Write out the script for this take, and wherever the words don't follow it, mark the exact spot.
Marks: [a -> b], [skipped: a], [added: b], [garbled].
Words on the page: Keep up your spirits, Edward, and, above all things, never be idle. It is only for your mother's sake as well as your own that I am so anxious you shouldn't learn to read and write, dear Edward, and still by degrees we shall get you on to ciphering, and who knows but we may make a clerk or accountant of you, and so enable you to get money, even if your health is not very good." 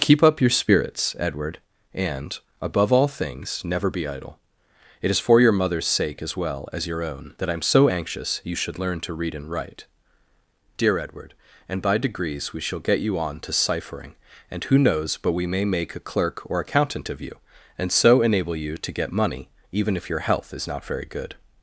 Keep up your spirits, Edward, and, above all things, never be idle. It is [skipped: only] for your mother's sake as well as your own that I am so anxious you [shouldn't -> should] learn to read and write, dear Edward, and [skipped: still] by degrees we shall get you on to ciphering, and who knows but we may make a clerk or accountant of you, and so enable you to get money, even if your health is not very good."